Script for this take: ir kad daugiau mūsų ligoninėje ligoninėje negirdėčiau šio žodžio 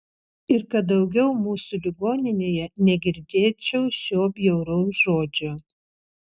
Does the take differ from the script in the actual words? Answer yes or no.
yes